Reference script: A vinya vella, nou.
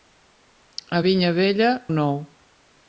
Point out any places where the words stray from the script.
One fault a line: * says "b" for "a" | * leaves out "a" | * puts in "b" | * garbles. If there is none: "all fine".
all fine